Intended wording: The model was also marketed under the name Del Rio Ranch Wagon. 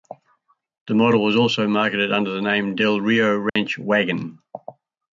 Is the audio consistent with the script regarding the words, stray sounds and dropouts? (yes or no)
no